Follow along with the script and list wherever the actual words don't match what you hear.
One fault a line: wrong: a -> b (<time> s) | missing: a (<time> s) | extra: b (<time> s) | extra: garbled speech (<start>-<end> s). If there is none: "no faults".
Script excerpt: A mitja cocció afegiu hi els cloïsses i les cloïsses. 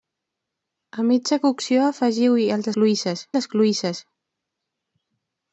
no faults